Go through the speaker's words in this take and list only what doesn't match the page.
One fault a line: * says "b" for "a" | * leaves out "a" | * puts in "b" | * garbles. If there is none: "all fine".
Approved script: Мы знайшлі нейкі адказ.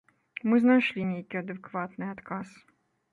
* puts in "адэкватны"